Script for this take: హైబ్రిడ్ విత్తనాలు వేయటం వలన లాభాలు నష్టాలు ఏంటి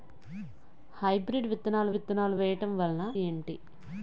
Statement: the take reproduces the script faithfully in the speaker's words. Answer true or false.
false